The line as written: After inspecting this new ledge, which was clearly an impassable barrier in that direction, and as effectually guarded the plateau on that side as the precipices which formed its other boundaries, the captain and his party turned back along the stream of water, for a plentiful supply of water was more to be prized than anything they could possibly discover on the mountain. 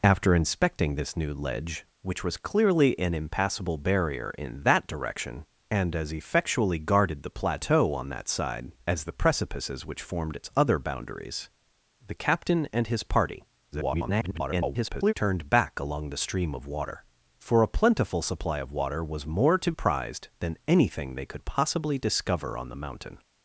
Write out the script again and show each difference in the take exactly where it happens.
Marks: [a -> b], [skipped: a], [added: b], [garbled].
After inspecting this new ledge, which was clearly an impassable barrier in that direction, and as effectually guarded the plateau on that side as the precipices which formed its other boundaries, the captain and his party [garbled] turned back along the stream of water, for a plentiful supply of water was more to [skipped: be] prized than anything they could possibly discover on the mountain.